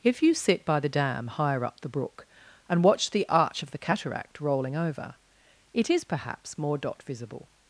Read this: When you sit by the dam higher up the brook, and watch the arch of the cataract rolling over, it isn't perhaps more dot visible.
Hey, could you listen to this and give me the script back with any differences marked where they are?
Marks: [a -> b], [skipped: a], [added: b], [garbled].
[When -> If] you sit by the dam higher up the brook, and watch the arch of the cataract rolling over, it [isn't -> is] perhaps more dot visible.